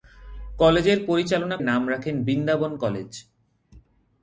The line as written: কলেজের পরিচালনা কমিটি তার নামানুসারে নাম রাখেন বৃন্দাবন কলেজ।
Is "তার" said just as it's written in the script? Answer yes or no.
no